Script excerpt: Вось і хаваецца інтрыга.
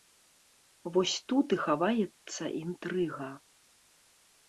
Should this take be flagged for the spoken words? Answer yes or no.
yes